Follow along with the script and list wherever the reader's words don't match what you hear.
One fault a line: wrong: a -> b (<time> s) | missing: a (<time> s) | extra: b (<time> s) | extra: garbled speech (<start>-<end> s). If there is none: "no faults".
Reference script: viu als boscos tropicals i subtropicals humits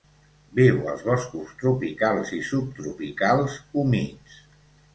no faults